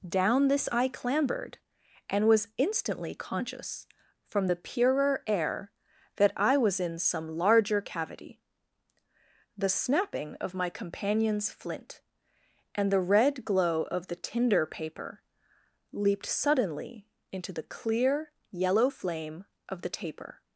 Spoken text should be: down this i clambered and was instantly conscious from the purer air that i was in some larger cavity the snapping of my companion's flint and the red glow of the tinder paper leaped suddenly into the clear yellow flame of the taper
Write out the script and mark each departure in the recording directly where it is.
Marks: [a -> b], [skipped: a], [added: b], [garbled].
down this i clambered and was instantly conscious from the purer air that i was in some larger cavity the snapping of my companion's flint and the red glow of the tinder paper leaped suddenly into the clear yellow flame of the taper